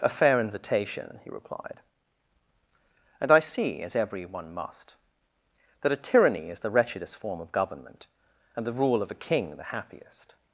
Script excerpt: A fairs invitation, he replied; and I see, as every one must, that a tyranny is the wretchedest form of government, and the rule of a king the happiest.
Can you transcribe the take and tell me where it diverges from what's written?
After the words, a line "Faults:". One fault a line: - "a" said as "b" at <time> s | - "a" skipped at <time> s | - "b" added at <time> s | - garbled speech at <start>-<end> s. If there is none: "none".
A fair invitation, he replied; and I see, as every one must, that a tyranny is the wretchedest form of government, and the rule of a king the happiest.
Faults:
- "fairs" said as "fair" at 0.1 s